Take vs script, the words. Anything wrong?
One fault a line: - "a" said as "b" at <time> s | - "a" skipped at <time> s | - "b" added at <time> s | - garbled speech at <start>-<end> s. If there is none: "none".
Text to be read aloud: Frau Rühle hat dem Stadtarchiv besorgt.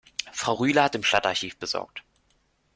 none